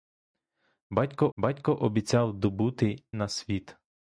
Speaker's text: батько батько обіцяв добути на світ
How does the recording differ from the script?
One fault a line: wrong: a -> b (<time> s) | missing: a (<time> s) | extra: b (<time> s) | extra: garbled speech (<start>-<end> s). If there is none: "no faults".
no faults